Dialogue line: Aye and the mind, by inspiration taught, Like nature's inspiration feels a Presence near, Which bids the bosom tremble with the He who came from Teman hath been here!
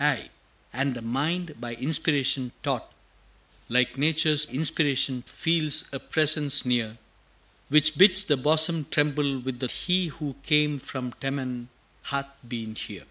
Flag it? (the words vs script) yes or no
no